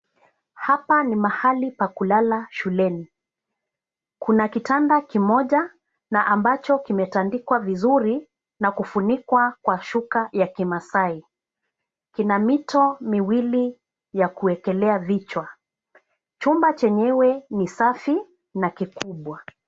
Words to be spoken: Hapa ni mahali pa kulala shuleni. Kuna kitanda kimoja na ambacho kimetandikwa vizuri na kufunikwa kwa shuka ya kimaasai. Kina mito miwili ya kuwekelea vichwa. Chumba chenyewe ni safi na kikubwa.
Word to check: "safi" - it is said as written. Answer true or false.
true